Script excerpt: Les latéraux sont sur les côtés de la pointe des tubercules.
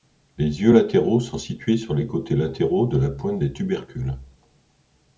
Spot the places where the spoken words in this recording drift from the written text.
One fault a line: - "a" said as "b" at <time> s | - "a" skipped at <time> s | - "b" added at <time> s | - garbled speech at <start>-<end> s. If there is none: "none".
- "yeux" added at 0.6 s
- "situés" added at 1.4 s
- "latéraux" added at 2.4 s